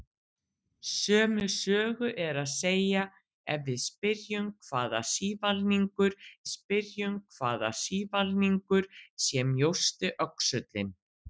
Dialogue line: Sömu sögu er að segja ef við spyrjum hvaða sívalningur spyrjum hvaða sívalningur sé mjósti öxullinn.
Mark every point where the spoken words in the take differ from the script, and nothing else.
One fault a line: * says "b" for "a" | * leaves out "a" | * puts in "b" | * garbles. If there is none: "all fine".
all fine